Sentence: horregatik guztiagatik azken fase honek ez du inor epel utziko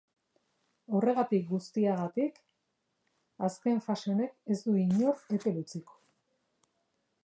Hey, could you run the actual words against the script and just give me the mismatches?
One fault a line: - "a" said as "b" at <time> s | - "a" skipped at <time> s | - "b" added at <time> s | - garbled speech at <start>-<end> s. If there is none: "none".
none